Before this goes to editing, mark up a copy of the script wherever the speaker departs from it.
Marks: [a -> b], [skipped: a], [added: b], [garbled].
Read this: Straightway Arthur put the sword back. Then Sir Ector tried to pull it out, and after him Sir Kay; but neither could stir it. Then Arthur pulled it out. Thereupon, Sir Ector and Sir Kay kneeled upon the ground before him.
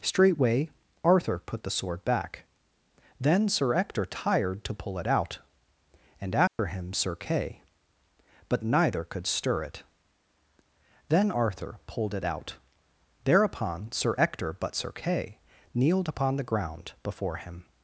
Straightway Arthur put the sword back. Then Sir Ector [tried -> tired] to pull it out, and after him Sir Kay; but neither could stir it. Then Arthur pulled it out. Thereupon, Sir Ector [and -> but] Sir Kay kneeled upon the ground before him.